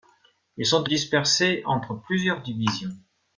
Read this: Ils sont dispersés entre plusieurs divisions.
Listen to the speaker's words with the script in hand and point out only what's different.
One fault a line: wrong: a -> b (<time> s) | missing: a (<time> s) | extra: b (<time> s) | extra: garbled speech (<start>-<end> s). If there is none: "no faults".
no faults